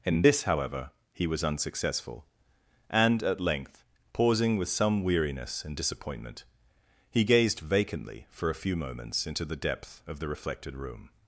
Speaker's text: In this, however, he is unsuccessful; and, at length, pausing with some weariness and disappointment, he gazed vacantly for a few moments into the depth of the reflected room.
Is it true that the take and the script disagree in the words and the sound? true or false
true